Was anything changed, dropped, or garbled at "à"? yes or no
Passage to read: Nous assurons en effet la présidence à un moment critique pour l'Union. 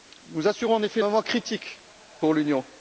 yes